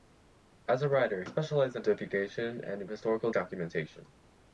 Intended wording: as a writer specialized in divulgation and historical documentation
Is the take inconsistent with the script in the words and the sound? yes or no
no